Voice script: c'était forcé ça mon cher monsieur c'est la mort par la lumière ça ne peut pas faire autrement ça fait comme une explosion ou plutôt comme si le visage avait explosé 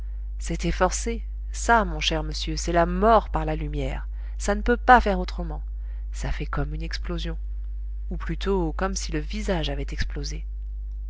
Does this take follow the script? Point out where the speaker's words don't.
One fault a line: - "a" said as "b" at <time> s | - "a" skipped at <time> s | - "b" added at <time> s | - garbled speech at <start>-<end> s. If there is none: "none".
none